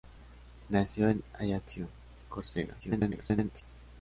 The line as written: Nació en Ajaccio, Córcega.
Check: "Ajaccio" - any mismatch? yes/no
no